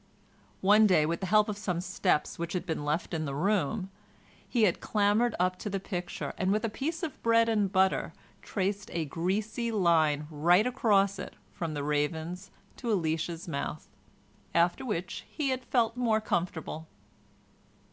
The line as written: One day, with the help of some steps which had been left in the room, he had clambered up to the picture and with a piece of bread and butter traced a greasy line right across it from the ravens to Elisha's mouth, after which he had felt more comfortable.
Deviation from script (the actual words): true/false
false